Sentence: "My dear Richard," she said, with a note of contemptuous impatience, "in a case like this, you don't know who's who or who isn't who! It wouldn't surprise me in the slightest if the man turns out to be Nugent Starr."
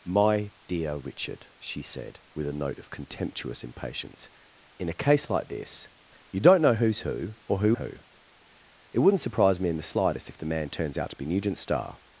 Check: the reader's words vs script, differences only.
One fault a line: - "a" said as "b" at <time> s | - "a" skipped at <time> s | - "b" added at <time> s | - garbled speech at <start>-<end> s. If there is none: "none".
- "isn't" skipped at 7.8 s